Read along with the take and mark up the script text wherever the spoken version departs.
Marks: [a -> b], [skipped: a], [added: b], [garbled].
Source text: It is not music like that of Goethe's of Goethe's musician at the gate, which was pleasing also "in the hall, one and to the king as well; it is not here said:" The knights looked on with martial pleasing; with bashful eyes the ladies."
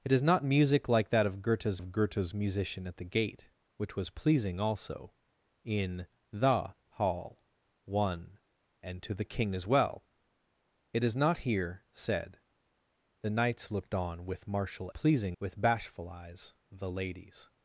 It is not music like that of Goethe's of Goethe's musician at the gate, which was pleasing also "in the hall, one and to the king as well; it is not here said:" The knights looked on with martial pleasing; with bashful eyes the ladies."